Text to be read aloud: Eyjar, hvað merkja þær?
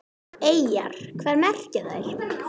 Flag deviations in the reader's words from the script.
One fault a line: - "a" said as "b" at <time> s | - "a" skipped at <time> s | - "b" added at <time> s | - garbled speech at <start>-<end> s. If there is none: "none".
none